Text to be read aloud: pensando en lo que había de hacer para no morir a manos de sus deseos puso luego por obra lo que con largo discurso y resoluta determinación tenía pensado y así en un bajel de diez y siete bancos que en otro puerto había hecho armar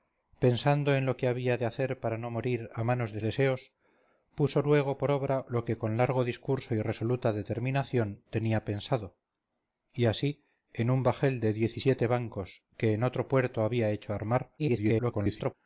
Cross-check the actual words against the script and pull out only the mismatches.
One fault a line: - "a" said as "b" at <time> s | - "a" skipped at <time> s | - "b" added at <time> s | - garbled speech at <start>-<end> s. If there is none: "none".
- "sus" skipped at 3.2 s
- garbled speech at 14.6-15.5 s